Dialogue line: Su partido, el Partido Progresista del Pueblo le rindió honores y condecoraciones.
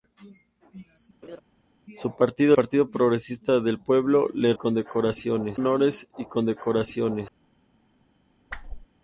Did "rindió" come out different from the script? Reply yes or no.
yes